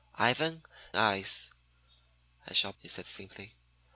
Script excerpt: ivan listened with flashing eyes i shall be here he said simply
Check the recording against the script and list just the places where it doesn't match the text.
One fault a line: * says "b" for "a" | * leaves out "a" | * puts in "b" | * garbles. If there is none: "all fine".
* leaves out "listened with flashing"
* leaves out "be here"